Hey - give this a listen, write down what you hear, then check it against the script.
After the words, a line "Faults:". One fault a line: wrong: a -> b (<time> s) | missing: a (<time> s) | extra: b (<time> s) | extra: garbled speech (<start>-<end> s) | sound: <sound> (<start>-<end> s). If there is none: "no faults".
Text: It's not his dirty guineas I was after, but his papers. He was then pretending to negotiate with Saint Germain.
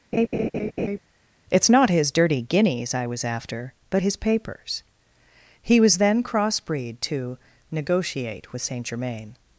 It's not his dirty guineas I was after, but his papers. He was then crossbreed to negotiate with Saint Germain.
Faults:
sound: laugh (0.1-1.0 s)
wrong: pretending -> crossbreed (6.2 s)